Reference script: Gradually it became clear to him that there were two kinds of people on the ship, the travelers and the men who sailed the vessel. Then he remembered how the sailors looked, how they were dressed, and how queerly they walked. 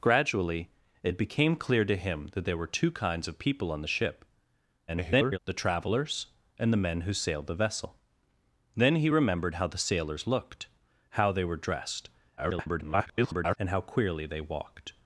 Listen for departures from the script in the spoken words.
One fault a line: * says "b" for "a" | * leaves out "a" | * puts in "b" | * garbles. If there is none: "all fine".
* garbles
* garbles